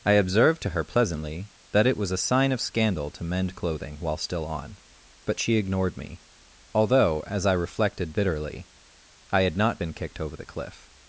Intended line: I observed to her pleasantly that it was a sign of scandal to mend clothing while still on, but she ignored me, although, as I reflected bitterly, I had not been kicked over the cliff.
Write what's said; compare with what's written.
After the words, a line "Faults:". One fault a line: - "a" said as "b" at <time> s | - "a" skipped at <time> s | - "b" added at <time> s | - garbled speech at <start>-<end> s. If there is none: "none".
I observed to her pleasantly that it was a sign of scandal to mend clothing while still on, but she ignored me, although, as I reflected bitterly, I had not been kicked over the cliff.
Faults:
none